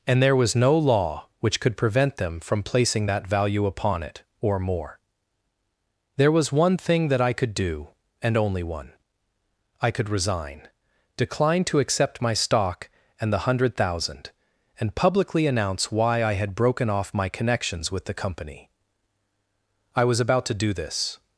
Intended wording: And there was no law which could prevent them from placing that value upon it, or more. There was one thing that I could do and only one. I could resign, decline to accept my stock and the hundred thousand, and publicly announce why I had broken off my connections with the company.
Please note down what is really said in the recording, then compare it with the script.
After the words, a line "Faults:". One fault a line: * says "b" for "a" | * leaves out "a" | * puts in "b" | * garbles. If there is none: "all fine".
And there was no law which could prevent them from placing that value upon it, or more. There was one thing that I could do and only one. I could resign, decline to accept my stock and the hundred thousand, and publicly announce why I had broken off my connections with the company. I was about to do this
Faults:
* puts in "I was about to do this"